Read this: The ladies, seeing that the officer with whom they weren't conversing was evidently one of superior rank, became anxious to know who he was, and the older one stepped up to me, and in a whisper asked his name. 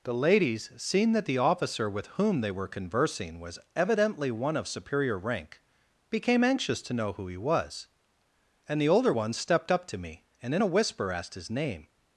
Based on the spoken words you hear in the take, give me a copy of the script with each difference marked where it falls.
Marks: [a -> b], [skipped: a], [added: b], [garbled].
The ladies, seeing that the officer with whom they [weren't -> were] conversing was evidently one of superior rank, became anxious to know who he was, and the older one stepped up to me, and in a whisper asked his name.